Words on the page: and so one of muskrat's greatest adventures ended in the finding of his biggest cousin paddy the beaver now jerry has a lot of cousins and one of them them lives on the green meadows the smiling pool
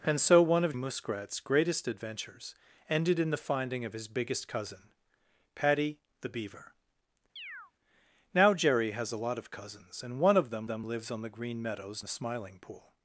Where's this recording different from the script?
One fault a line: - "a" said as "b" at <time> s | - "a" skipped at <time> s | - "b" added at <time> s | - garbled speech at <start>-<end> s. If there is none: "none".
none